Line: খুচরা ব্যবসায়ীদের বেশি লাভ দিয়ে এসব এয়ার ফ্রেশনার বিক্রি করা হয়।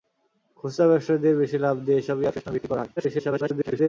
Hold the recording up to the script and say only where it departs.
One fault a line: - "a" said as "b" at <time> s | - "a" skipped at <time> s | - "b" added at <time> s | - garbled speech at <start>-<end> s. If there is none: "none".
- garbled speech at 3.0-3.9 s